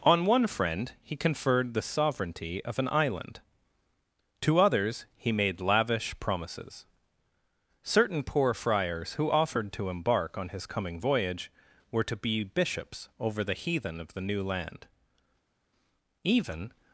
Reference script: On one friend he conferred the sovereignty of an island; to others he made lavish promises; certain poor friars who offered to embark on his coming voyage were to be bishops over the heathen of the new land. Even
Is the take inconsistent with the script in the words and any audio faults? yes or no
no